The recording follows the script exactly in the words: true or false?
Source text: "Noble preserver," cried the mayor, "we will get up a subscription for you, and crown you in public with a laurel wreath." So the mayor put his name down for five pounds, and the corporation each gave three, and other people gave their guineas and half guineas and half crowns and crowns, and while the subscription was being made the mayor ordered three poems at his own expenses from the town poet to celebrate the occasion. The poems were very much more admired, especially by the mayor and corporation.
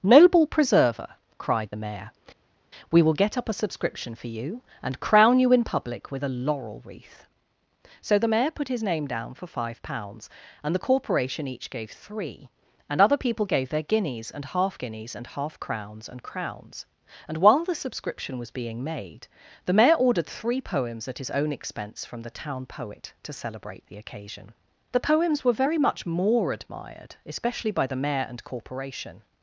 false